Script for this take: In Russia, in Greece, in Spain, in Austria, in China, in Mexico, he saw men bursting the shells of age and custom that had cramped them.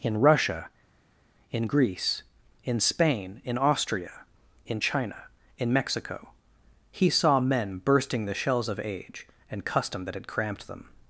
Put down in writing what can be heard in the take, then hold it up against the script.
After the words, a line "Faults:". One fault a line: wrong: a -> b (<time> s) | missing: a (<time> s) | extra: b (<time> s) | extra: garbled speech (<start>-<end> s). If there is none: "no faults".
In Russia, in Greece, in Spain, in Austria, in China, in Mexico, he saw men bursting the shells of age and custom that had cramped them.
Faults:
no faults